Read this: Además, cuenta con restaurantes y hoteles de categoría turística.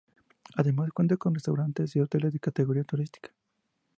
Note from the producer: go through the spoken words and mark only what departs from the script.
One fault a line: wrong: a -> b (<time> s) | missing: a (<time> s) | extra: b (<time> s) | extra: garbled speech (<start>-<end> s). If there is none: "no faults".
no faults